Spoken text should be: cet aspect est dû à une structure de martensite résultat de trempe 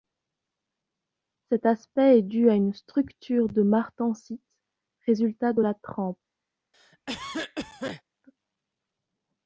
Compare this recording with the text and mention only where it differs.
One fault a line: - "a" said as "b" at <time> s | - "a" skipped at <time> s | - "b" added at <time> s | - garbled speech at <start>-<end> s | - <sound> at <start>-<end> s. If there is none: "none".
- "la" added at 5.6 s
- cough at 6.7-8.0 s